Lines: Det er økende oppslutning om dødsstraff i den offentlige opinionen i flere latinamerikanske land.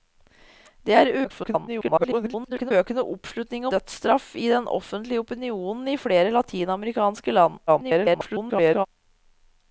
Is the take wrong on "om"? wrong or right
wrong